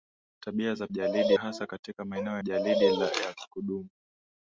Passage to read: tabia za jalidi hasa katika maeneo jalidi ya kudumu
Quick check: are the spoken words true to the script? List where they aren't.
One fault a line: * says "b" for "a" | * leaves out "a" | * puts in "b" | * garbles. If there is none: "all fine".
all fine